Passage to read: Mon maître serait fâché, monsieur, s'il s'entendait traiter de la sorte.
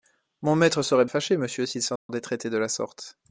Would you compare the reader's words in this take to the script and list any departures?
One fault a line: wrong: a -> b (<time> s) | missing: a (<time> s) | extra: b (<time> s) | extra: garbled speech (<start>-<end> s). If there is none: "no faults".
no faults